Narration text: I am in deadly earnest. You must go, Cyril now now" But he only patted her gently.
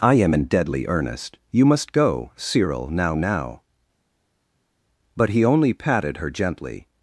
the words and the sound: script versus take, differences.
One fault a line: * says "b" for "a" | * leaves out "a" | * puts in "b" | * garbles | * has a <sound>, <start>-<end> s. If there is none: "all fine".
all fine